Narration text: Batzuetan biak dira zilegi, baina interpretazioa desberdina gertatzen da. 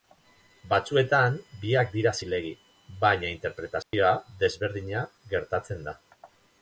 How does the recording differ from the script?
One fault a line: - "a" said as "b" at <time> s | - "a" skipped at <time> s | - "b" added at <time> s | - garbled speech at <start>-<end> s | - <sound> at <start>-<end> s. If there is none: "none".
- dropout at 3.8-3.9 s